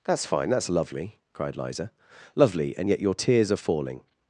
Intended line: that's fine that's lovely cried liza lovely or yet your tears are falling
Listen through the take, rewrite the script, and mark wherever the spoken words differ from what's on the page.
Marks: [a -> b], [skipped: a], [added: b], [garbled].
that's fine that's lovely cried liza lovely [or -> and] yet your tears are falling